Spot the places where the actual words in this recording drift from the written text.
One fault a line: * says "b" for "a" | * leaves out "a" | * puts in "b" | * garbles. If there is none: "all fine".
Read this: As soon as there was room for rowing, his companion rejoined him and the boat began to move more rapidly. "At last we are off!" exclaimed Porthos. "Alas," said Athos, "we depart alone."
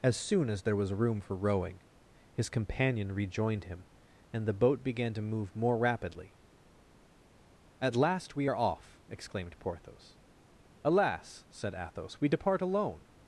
all fine